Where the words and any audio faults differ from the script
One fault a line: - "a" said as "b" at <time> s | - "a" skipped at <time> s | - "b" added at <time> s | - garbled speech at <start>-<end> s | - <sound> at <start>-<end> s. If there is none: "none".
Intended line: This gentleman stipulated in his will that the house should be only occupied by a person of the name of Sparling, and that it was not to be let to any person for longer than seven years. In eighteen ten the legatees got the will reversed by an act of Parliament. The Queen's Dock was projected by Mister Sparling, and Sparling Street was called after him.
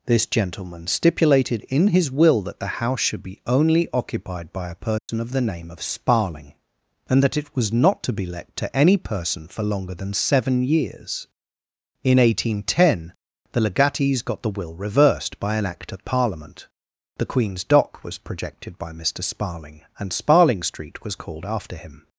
- dropout at 5.0-5.1 s